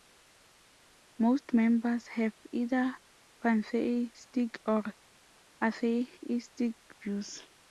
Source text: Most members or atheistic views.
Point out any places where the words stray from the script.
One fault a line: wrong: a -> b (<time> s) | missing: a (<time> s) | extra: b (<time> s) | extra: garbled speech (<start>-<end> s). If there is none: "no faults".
extra: have either pantheistic (2.1 s)